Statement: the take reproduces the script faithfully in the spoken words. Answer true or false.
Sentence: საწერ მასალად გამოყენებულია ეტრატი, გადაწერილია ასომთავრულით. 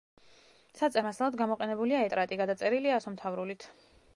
true